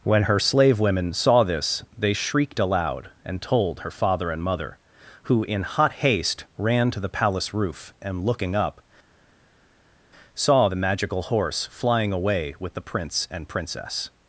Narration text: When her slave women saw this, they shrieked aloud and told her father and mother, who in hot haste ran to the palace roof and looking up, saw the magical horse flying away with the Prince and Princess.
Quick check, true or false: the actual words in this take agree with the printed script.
true